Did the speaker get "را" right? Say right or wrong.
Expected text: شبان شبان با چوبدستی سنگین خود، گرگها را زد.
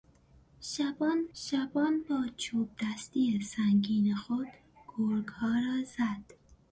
right